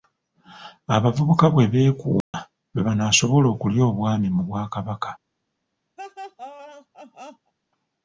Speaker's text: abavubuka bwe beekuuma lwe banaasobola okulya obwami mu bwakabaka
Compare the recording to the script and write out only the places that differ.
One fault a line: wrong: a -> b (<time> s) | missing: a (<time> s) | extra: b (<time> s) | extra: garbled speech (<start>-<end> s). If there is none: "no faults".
no faults